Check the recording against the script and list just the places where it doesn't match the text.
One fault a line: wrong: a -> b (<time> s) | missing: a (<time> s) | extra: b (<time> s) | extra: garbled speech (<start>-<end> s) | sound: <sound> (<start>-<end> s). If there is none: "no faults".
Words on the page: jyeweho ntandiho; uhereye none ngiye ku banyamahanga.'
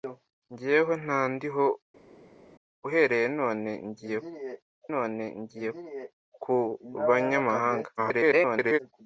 extra: none ngiye (4.9 s)
extra: garbled speech (8.0-8.8 s)